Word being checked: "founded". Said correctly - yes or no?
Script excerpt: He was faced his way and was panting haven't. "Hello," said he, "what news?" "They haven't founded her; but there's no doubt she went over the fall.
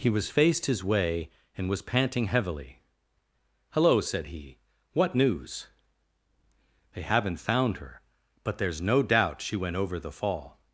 no